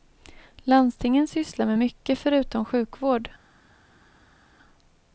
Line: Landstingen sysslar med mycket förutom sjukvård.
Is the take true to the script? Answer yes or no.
yes